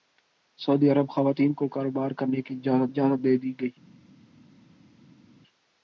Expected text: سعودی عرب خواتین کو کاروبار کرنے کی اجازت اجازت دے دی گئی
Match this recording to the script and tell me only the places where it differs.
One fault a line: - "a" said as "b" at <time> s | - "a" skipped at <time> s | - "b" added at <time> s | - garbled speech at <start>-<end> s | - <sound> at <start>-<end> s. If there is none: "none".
none